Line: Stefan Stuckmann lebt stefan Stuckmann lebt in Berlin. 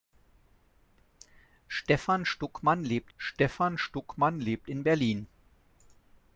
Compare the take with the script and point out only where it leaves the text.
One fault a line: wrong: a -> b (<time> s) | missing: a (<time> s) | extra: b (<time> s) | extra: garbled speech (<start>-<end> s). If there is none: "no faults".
no faults